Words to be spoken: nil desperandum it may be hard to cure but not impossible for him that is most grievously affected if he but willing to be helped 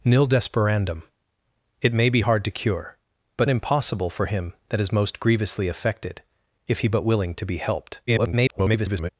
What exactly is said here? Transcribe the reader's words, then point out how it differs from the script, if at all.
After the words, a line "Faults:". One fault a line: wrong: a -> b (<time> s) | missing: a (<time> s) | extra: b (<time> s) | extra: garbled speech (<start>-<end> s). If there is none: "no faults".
nil desperandum it may be hard to cure but impossible for him that is most grievously affected if he but willing to be helped [garbled]
Faults:
missing: not (3.5 s)
extra: garbled speech (8.1-9.1 s)